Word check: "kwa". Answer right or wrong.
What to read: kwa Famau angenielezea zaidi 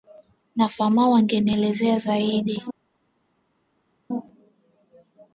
wrong